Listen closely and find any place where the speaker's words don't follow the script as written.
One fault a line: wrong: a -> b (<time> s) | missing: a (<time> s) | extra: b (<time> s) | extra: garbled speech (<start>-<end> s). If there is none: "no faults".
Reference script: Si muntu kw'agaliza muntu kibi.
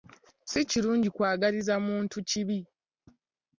wrong: muntu -> kirungi (0.7 s)